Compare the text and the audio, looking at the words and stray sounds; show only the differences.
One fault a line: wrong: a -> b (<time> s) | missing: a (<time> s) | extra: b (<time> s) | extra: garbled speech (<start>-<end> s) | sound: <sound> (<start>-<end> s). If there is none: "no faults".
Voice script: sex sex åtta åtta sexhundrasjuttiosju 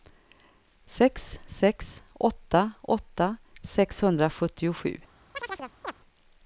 sound: chirp (5.3-5.9 s)